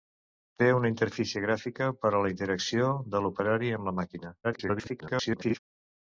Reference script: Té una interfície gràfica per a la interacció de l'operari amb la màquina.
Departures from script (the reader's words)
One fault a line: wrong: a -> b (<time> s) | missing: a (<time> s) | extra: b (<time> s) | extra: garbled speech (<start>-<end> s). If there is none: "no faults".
extra: garbled speech (4.4-5.6 s)